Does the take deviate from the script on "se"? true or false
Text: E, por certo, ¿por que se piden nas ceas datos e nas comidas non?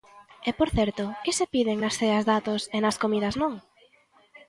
false